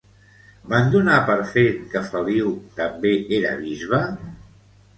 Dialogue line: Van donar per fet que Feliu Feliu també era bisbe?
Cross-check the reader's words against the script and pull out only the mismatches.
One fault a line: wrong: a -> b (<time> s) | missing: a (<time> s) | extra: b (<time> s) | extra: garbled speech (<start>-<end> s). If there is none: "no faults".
missing: Feliu (2.5 s)